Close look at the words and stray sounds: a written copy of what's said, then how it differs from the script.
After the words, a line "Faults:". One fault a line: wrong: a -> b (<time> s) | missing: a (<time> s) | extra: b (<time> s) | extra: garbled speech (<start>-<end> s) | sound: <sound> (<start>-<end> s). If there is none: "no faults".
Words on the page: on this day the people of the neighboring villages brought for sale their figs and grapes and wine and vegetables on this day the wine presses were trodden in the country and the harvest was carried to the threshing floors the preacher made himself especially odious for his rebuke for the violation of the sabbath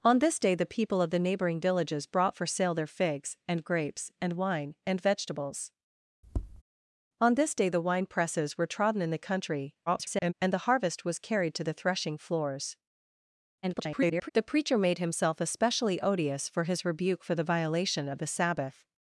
on this day the people of the neighboring villages brought for sale their figs and grapes and wine and vegetables on this day the wine presses were trodden in the country [garbled] and the harvest was carried to the threshing floors [garbled] the preacher made himself especially odious for his rebuke for the violation of the sabbath
Faults:
sound: tap (6.2-6.6 s)
extra: garbled speech (9.9-10.3 s)
extra: garbled speech (13.6-14.3 s)